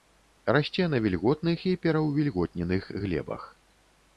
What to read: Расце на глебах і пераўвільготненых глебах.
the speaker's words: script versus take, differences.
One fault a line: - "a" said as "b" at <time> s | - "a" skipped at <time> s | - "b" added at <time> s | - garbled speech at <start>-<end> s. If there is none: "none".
- "глебах" said as "вільготных" at 1.0 s